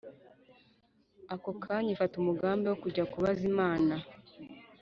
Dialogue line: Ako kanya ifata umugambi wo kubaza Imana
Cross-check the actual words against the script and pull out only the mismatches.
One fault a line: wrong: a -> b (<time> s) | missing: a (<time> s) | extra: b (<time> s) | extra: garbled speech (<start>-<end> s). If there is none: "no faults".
extra: kujya (2.8 s)